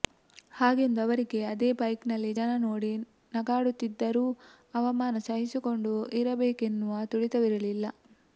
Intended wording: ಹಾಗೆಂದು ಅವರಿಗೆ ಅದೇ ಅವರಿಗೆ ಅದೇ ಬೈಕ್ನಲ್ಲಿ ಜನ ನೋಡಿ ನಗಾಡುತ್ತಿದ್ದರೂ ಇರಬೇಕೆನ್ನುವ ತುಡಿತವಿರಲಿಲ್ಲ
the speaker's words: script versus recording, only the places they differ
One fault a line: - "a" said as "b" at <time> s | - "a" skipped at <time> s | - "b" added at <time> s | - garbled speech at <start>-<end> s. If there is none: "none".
- "ಅವರಿಗೆ ಅದೇ" skipped at 1.7 s
- "ಅವಮಾನ ಸಹಿಸಿಕೊಂಡು" added at 4.7 s